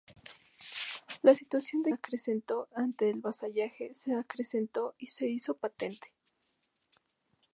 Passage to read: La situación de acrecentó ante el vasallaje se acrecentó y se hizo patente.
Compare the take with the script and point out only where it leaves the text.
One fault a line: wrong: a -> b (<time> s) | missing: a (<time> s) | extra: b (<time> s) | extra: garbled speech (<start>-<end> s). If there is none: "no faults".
no faults